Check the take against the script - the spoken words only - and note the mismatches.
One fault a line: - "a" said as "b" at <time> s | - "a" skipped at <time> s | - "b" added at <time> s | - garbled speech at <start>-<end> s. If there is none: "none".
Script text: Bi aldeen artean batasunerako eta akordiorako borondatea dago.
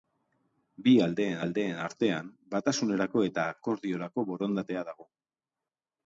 - "aldeen" added at 1.5 s